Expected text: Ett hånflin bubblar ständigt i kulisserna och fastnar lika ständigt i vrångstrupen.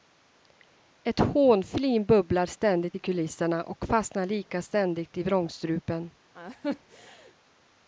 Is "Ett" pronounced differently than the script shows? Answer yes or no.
no